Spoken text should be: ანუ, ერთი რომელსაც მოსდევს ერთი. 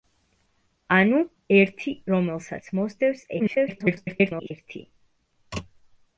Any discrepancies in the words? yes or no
yes